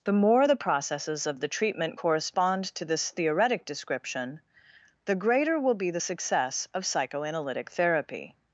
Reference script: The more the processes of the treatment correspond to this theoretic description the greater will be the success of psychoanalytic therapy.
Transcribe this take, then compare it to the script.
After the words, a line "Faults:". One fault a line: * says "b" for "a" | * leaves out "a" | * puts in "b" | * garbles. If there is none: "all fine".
The more the processes of the treatment correspond to this theoretic description the greater will be the success of psychoanalytic therapy.
Faults:
all fine